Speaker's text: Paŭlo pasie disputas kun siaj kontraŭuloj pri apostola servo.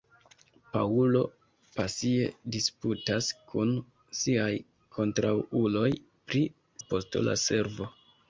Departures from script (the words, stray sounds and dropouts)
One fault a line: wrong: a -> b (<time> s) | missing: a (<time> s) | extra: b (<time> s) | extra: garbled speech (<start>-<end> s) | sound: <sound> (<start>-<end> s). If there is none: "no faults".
no faults